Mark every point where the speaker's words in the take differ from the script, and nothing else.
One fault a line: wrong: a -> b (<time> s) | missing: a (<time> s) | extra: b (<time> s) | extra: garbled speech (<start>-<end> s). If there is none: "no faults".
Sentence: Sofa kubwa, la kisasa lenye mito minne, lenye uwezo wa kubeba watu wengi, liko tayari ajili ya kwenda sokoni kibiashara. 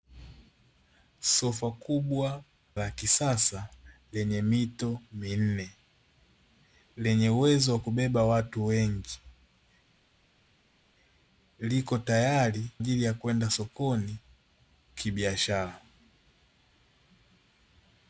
no faults